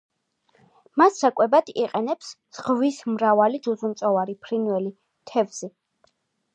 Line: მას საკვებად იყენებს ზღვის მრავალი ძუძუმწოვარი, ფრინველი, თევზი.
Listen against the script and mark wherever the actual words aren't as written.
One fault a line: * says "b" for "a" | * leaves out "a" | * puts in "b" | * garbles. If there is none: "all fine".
all fine